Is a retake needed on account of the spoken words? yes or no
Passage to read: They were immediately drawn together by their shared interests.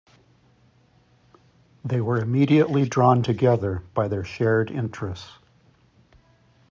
no